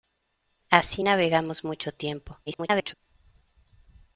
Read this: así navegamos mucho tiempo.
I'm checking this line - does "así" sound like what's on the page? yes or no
yes